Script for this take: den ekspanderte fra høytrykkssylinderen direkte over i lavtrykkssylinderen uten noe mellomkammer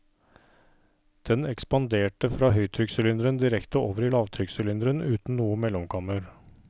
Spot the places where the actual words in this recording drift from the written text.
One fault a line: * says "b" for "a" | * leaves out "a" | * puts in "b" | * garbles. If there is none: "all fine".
all fine